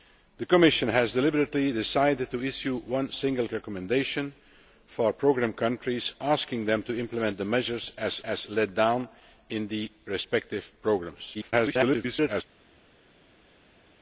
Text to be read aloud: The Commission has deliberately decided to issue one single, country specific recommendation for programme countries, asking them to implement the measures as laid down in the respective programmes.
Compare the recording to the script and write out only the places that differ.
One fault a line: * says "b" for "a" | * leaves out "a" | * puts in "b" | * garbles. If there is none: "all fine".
* leaves out "country specific"
* puts in "as"
* garbles